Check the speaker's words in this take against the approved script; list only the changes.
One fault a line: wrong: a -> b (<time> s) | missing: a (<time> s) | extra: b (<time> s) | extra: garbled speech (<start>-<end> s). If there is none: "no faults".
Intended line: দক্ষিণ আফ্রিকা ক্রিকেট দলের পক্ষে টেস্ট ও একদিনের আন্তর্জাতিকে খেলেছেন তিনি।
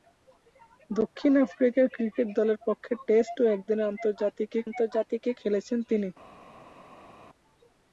extra: আন্তর্জাতিকে (4.7 s)